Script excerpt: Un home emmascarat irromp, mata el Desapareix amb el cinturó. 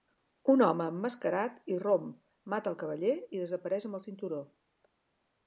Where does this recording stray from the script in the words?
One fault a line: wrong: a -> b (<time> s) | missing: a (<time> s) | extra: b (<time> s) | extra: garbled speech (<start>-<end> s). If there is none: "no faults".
extra: Cavaller i (2.8 s)